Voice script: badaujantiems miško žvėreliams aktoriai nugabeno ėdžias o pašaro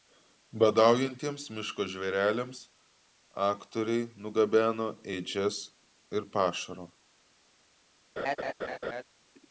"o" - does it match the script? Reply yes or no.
no